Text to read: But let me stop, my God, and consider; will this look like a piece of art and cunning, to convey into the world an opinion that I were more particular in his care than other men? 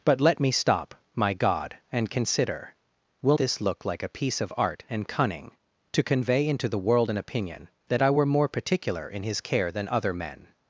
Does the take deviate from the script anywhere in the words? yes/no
no